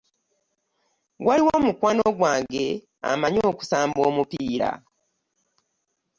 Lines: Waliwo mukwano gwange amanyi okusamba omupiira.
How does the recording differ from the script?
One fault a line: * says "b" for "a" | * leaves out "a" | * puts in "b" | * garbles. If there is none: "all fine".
all fine